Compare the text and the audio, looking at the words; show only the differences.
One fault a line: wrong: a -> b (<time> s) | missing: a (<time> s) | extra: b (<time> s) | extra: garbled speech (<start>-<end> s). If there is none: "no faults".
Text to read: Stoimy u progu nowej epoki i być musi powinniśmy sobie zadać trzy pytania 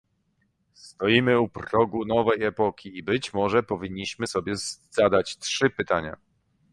wrong: musi -> może (3.3 s)